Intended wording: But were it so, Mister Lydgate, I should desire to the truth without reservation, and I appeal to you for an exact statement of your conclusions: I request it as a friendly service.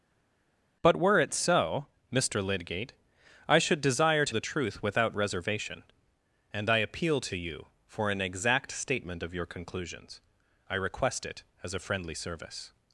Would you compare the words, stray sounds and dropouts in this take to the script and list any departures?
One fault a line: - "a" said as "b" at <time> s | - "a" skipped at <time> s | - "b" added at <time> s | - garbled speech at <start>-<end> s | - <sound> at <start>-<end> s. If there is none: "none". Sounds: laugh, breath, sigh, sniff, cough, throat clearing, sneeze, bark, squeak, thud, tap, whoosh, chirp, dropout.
none